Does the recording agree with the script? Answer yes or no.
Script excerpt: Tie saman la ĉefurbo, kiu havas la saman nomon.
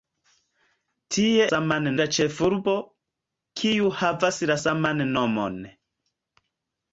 yes